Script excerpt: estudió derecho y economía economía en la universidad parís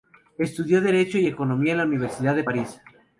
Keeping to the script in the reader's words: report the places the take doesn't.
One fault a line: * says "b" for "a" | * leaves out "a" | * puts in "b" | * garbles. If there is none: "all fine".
* leaves out "economía"
* puts in "de"